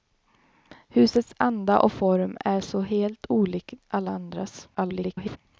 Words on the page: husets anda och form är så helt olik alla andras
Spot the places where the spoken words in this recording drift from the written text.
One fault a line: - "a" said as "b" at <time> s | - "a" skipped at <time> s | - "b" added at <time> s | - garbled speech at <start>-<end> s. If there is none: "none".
- garbled speech at 4.7-5.4 s